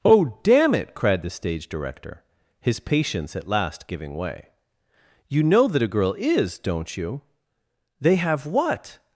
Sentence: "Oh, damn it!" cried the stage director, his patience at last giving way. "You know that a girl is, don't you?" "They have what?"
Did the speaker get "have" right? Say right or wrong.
right